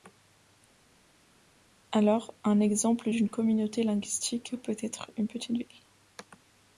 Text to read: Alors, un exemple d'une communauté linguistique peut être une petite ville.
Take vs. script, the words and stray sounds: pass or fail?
pass